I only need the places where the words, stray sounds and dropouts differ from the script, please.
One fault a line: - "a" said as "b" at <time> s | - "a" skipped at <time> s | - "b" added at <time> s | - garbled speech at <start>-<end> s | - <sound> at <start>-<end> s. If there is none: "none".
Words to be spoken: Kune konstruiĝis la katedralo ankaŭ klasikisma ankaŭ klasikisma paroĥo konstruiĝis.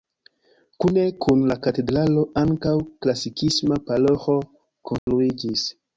- "konstruiĝis" said as "kun" at 1.2 s
- "ankaŭ klasikisma" skipped at 3.8 s
- dropout at 5.0-5.1 s